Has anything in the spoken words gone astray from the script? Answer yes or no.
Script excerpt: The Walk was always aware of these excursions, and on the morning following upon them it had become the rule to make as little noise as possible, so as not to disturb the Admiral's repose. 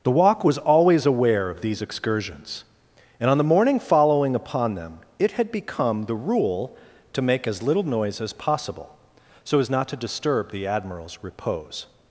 no